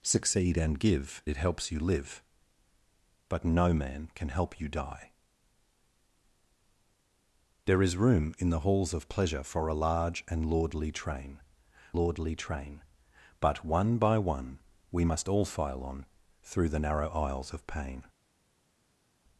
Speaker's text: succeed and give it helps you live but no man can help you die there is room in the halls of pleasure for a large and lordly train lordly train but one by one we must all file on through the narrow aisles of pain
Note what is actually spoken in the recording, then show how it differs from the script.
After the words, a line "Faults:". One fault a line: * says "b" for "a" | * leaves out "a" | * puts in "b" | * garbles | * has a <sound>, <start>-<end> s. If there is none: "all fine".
succeed and give it helps you live but no man can help you die there is room in the halls of pleasure for a large and lordly train lordly train but one by one we must all file on through the narrow aisles of pain
Faults:
all fine